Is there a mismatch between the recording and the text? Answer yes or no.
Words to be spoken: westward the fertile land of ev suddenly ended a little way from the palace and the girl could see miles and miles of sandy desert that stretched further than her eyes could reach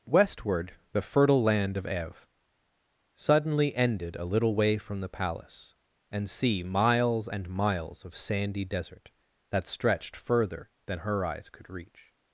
yes